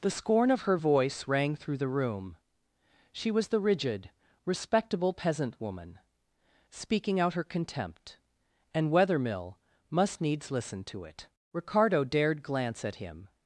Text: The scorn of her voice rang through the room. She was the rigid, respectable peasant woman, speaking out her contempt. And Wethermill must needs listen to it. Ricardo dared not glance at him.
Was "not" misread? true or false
true